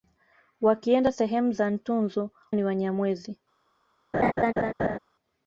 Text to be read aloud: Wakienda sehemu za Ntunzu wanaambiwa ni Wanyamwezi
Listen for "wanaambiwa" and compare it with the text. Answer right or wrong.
wrong